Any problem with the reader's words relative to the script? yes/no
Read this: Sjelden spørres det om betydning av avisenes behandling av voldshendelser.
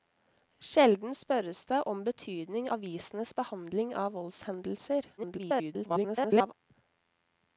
yes